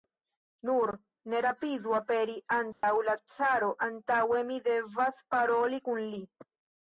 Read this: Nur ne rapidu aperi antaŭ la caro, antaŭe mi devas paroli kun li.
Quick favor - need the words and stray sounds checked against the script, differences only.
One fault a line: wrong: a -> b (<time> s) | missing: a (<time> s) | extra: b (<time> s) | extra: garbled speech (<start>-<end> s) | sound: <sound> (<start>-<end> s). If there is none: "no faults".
sound: dropout (2.7-2.8 s)